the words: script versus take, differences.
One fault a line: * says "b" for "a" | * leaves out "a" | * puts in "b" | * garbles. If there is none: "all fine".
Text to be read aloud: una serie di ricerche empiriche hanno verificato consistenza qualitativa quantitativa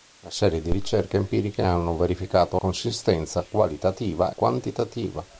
all fine